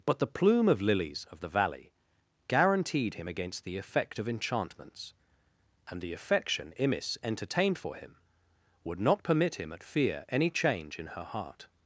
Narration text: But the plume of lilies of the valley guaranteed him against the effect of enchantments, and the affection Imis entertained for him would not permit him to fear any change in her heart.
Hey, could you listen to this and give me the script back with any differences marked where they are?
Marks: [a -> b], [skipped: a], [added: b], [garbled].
But the plume of lilies of the valley guaranteed him against the effect of enchantments, and the affection Imis entertained for him would not permit him [to -> at] fear any change in her heart.